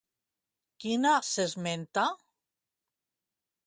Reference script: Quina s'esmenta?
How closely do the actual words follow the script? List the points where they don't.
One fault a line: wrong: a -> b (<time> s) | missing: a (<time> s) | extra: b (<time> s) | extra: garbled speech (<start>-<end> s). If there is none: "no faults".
no faults